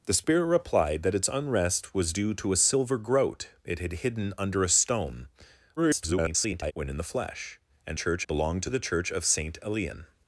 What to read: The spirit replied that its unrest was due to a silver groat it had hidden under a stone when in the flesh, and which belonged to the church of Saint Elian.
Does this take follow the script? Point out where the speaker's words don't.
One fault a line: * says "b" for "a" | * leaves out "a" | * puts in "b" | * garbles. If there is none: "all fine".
* garbles
* says "church" for "which"